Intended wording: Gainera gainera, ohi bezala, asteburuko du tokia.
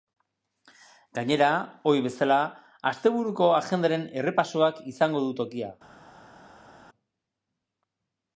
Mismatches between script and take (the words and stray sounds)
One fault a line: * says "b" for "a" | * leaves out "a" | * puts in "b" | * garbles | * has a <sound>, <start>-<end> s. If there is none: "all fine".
* leaves out "gainera"
* puts in "agendaren errepasoak izango"